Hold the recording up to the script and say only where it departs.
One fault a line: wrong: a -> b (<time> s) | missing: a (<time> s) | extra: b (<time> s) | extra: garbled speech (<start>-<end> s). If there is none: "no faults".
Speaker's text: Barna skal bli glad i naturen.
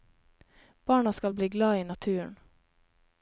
no faults